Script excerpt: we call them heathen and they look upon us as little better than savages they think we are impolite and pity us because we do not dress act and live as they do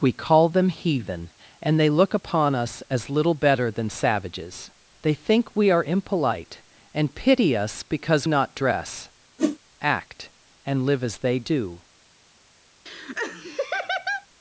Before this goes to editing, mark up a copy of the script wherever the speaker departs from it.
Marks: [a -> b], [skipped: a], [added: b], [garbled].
we call them heathen and they look upon us as little better than savages they think we are impolite and pity us because [skipped: we do] not dress act and live as they do